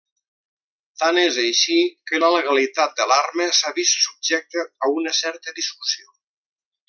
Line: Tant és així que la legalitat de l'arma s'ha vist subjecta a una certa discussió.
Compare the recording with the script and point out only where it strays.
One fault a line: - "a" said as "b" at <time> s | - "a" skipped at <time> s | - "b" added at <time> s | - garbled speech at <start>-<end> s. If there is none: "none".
none